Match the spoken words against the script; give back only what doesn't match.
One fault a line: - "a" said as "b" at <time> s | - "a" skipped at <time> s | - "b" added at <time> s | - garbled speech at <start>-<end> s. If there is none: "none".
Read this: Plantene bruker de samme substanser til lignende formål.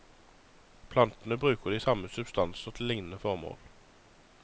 none